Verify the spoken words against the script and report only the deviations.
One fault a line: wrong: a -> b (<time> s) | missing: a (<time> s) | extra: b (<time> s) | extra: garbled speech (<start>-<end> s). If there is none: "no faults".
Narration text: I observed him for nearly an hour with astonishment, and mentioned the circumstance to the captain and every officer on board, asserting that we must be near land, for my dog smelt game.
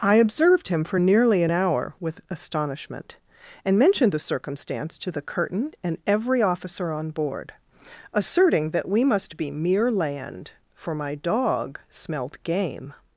wrong: captain -> curtain (5.2 s)
wrong: near -> mere (9.5 s)